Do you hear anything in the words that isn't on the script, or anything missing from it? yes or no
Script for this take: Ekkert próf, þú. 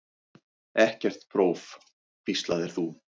yes